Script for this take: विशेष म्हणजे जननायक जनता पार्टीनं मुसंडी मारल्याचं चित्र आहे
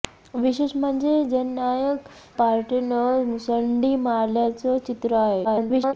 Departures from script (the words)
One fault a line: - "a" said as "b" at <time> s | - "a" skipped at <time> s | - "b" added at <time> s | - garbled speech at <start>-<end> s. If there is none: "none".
- "जनता" skipped at 2.1 s
- garbled speech at 5.4-5.9 s